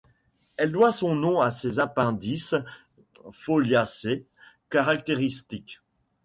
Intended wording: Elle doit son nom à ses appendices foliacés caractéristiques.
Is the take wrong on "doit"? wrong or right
right